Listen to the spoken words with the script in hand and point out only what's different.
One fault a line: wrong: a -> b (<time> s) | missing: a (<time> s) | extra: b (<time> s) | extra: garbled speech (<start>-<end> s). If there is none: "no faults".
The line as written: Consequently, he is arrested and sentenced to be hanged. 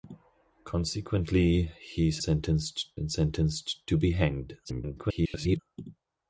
wrong: arrested -> sentenced (2.2 s)
extra: garbled speech (4.6-5.6 s)